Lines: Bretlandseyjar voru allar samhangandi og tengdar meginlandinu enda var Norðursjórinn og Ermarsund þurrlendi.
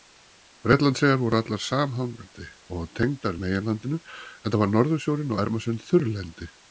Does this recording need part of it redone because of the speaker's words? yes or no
no